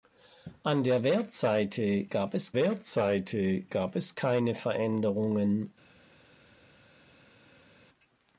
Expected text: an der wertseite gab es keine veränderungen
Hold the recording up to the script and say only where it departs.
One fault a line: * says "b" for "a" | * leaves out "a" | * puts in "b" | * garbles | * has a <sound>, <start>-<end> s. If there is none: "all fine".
* puts in "wertseite gab es"